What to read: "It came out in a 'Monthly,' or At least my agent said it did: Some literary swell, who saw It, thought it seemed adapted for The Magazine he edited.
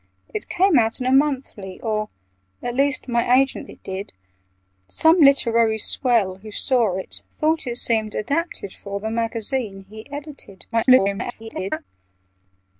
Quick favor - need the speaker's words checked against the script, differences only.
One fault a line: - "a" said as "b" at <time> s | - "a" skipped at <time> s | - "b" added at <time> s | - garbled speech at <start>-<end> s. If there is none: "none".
- "said" skipped at 3.7 s
- garbled speech at 10.7-11.8 s